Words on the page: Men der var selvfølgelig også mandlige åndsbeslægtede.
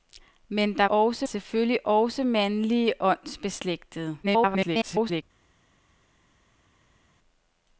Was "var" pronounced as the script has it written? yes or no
no